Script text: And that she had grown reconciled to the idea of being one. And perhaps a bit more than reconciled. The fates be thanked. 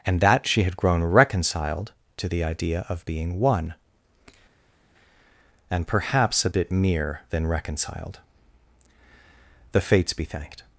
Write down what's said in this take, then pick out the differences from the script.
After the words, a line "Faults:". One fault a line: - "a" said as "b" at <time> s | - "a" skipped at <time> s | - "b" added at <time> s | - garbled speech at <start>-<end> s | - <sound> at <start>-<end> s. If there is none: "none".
And that she had grown reconciled to the idea of being one. And perhaps a bit mere than reconciled. The fates be thanked.
Faults:
- "more" said as "mere" at 6.7 s